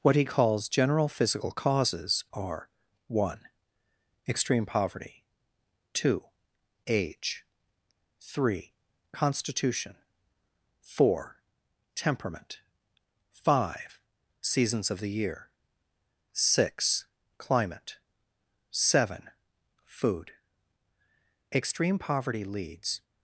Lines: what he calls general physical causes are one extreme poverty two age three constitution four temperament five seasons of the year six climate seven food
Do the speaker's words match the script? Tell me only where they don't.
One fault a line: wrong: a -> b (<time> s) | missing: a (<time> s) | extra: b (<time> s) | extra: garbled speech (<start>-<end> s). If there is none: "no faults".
extra: extreme poverty leads (21.5 s)